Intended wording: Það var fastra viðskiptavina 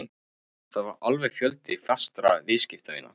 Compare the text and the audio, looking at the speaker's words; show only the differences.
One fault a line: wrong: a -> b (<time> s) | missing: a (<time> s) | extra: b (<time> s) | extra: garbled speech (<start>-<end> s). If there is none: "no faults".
extra: alveg fjöldi (1.1 s)